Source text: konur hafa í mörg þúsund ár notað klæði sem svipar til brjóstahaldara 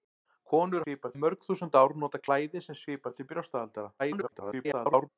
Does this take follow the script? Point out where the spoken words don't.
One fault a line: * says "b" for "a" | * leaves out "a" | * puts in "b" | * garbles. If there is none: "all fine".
* says "svipar" for "hafa"
* garbles